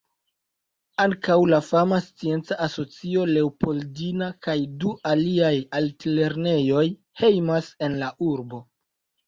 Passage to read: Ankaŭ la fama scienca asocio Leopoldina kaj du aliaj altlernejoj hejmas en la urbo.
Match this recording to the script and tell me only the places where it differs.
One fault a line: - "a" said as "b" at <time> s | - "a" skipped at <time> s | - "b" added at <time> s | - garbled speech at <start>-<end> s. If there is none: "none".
none